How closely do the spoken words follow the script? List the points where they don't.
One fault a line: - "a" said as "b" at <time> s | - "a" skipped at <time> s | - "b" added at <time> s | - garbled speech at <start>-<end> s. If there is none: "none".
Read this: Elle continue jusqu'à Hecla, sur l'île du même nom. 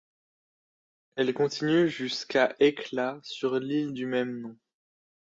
none